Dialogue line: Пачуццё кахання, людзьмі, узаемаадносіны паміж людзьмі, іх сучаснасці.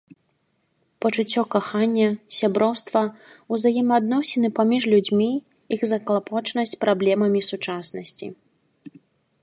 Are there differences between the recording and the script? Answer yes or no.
yes